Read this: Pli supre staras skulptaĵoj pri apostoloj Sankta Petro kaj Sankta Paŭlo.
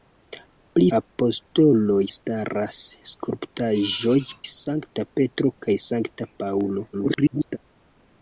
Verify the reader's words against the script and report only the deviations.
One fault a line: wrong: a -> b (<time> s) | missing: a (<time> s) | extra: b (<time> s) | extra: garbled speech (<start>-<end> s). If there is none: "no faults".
wrong: supre -> apostoloj (1.0 s)
missing: pri apostoloj (4.1 s)
extra: garbled speech (6.9-7.6 s)